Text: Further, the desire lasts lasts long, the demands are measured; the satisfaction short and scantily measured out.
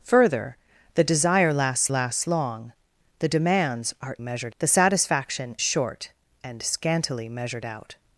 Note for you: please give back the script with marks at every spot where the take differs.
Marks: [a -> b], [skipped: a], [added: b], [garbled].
Further, the desire lasts lasts long, the demands are measured; the satisfaction short and scantily measured out.